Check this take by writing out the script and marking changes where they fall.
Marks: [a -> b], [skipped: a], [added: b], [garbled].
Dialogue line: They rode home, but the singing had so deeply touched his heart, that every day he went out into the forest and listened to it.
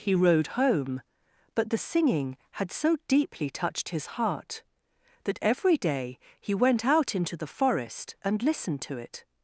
[They -> He] rode home, but the singing had so deeply touched his heart, that every day he went out into the forest and listened to it.